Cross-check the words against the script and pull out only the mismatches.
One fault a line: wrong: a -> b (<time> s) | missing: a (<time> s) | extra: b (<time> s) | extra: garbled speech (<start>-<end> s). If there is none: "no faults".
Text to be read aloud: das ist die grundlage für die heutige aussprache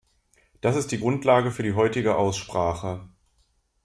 no faults